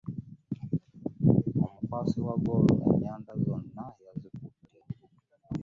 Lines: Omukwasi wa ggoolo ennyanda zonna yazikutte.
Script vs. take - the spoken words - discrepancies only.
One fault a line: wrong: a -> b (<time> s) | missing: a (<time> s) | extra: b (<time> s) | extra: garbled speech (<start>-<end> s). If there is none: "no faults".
no faults